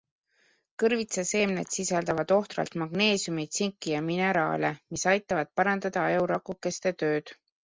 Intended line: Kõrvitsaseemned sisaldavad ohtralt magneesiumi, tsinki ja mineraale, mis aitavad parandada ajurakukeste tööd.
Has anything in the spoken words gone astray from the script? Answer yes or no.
no